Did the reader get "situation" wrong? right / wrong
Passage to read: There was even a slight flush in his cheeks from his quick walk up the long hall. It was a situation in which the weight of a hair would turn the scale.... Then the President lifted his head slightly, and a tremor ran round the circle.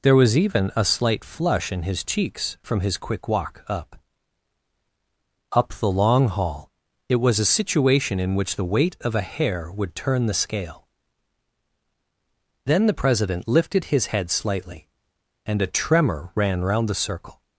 right